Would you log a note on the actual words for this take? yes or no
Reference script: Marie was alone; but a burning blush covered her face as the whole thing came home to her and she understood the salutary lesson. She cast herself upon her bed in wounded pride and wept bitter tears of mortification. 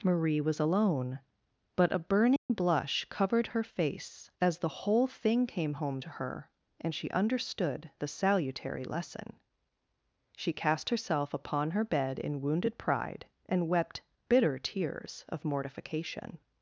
no